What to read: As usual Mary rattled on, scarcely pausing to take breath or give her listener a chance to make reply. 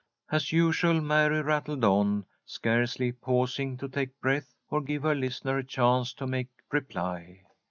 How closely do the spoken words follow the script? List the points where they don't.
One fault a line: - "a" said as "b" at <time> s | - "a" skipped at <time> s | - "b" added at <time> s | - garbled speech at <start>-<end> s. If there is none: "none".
none